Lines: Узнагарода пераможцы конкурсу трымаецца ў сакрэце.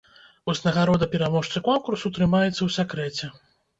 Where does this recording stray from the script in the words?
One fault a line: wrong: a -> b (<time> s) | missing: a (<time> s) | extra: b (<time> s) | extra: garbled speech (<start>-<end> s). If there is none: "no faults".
no faults